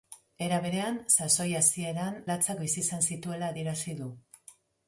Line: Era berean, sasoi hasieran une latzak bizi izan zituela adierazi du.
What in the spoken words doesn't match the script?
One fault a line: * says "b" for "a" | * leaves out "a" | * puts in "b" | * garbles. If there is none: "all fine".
* leaves out "une"